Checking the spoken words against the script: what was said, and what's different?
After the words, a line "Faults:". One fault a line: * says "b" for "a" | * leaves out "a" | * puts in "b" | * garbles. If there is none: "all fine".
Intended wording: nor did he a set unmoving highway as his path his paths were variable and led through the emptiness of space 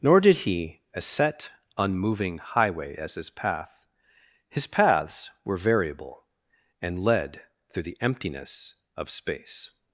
nor did he a set unmoving highway as his path his paths were variable and led through the emptiness of space
Faults:
all fine